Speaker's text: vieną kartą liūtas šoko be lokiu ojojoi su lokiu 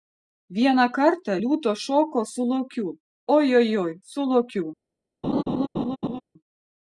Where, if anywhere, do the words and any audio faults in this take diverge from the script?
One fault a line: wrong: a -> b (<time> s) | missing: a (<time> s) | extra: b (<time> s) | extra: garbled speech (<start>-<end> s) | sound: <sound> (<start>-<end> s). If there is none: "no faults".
wrong: be -> su (2.3 s)
sound: laugh (5.2-6.2 s)